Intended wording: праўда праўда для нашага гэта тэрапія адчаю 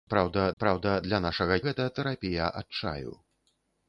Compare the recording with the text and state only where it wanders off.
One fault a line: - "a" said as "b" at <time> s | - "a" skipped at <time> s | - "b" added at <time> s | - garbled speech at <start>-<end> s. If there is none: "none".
none